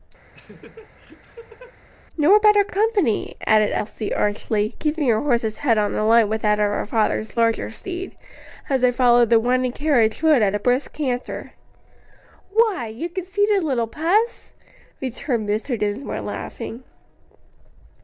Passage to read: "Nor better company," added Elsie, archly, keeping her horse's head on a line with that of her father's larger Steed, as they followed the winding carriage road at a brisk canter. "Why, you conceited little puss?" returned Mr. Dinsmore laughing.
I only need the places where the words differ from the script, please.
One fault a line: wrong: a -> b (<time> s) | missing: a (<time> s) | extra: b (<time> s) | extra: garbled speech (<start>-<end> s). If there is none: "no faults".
no faults